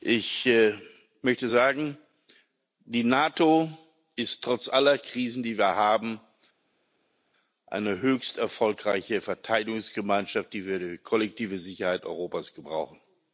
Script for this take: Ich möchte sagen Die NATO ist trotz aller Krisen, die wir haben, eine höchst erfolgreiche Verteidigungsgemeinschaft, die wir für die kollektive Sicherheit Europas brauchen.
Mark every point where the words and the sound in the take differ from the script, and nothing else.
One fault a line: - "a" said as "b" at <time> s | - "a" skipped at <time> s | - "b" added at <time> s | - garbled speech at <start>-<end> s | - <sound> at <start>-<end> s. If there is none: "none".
none